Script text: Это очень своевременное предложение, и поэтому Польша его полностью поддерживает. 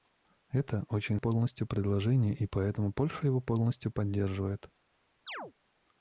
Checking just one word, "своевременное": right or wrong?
wrong